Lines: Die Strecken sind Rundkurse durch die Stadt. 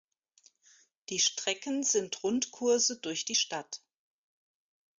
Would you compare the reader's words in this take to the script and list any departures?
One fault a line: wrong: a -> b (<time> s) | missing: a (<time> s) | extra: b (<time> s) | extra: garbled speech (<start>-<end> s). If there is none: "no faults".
no faults